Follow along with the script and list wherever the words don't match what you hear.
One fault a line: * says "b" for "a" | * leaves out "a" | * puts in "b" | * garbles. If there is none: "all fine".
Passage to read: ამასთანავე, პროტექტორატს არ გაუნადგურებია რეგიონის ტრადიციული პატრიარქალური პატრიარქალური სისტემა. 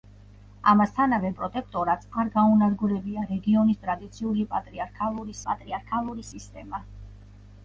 all fine